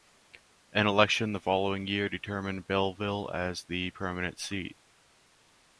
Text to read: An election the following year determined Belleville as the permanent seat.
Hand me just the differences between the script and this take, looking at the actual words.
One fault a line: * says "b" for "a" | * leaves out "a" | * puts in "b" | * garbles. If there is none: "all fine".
all fine